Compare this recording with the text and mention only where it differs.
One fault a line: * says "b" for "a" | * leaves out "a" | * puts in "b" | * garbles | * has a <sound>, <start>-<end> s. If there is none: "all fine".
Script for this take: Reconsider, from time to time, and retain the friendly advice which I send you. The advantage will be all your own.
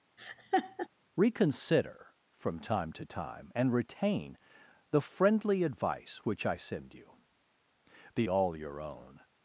* has a laugh, 0.2-0.9 s
* leaves out "advantage will be"